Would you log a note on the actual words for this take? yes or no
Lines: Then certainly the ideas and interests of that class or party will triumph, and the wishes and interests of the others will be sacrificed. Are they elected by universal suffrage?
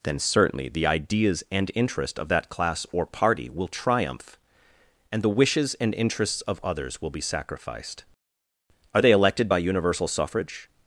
yes